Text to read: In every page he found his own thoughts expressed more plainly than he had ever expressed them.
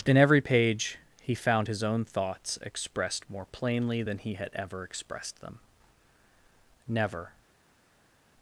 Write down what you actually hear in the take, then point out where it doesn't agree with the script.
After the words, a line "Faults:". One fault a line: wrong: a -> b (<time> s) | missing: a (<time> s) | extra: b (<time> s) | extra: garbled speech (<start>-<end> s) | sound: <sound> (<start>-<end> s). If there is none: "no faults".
In every page he found his own thoughts expressed more plainly than he had ever expressed them. Never
Faults:
extra: Never (6.9 s)